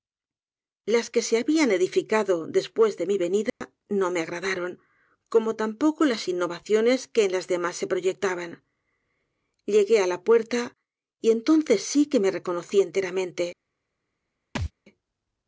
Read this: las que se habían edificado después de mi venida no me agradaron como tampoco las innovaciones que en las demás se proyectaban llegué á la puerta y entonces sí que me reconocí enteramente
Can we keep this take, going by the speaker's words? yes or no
yes